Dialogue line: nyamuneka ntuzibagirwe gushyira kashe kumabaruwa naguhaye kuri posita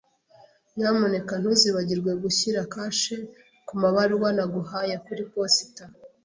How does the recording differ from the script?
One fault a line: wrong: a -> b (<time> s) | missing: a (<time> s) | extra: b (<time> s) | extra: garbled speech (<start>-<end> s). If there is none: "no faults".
no faults